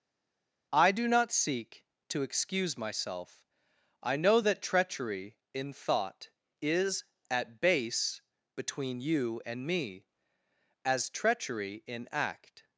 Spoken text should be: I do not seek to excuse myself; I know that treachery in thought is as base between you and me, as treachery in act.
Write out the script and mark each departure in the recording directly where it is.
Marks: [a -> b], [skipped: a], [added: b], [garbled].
I do not seek to excuse myself; I know that treachery in thought is [as -> at] base between you and me, as treachery in act.